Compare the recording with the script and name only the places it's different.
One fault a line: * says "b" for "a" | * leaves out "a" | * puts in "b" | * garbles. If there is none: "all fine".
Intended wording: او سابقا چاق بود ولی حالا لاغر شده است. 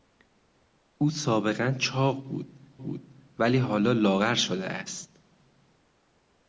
* puts in "بود"